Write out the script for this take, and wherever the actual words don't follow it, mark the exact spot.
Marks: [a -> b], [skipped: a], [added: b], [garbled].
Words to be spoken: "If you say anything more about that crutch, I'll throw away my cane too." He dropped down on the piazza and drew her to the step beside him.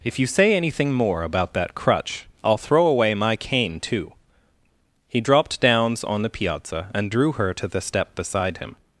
"If you say anything more about that crutch, I'll throw away my cane too." He dropped [down -> downs] on the piazza and drew her to the step beside him.